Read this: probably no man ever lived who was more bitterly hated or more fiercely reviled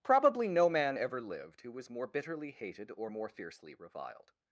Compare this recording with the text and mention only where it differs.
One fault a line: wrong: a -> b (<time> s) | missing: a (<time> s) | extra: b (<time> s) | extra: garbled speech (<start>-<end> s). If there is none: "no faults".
no faults